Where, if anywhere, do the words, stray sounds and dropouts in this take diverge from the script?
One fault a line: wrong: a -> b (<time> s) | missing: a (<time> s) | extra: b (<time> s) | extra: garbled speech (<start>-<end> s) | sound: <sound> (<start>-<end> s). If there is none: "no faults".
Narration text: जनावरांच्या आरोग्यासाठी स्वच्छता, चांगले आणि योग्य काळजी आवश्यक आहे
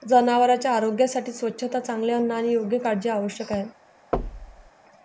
extra: अन्न (2.1 s)
sound: thud (4.1-4.7 s)